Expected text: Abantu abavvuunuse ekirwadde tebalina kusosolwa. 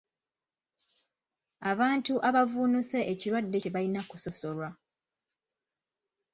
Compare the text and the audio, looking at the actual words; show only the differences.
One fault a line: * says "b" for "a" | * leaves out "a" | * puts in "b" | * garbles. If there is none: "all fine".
all fine